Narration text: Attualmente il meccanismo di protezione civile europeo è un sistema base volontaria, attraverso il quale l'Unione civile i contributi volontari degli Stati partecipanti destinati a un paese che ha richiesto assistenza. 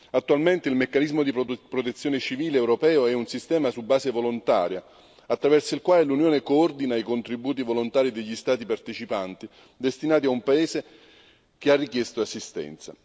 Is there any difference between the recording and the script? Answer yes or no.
yes